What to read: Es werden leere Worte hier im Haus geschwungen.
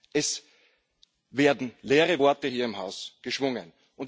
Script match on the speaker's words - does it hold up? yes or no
yes